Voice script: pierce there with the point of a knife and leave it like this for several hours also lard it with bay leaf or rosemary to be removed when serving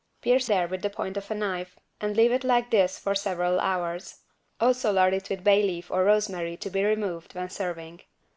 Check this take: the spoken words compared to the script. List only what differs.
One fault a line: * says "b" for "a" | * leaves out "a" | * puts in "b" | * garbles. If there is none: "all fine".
all fine